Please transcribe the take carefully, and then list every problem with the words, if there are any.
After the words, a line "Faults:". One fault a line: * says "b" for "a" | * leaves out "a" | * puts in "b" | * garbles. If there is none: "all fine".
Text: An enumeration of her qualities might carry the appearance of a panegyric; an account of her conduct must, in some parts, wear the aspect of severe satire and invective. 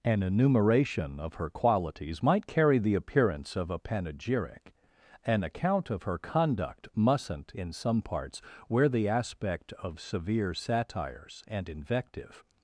An enumeration of her qualities might carry the appearance of a panegyric; an account of her conduct mustn't, in some parts, wear the aspect of severe satires and invective.
Faults:
* says "mustn't" for "must"
* says "satires" for "satire"